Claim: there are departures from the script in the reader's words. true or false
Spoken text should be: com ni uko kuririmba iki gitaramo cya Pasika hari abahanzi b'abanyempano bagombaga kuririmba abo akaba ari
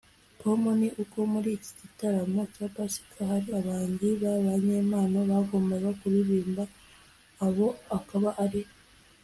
true